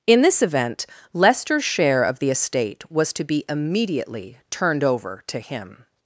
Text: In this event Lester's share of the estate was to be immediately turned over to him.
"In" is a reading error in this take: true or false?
false